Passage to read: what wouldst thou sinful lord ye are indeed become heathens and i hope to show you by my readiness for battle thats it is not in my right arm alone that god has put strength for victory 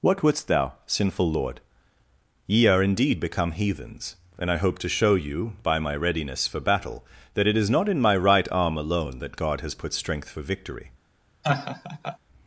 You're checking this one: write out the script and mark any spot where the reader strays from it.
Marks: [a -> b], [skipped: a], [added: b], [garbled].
what wouldst thou sinful lord ye are indeed become heathens and i hope to show you by my readiness for battle [thats -> that] it is not in my right arm alone that god has put strength for victory